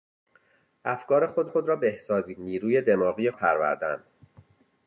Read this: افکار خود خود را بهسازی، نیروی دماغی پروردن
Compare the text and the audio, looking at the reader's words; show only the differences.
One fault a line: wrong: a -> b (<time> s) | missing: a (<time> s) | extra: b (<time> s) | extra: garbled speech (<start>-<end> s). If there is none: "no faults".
no faults